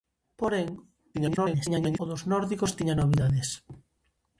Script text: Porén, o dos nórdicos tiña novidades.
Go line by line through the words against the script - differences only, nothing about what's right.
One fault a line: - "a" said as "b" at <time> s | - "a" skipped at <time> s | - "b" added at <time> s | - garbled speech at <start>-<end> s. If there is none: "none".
- garbled speech at 1.1-2.0 s